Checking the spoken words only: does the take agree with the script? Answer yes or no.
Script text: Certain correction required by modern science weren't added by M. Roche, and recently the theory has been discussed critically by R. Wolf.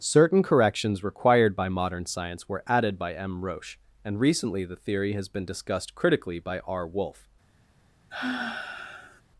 no